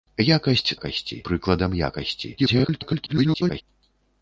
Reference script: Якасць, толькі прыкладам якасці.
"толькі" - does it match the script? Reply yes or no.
no